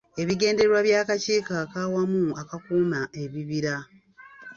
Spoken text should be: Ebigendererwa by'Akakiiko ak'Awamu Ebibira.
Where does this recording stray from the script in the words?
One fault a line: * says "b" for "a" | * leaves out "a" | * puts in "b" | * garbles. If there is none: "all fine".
* puts in "Akakuuma"